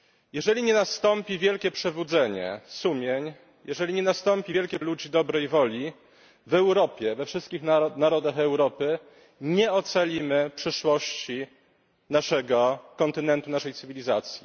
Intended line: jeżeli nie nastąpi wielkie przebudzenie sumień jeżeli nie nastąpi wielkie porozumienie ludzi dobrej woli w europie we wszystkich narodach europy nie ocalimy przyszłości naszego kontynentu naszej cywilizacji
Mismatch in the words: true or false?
true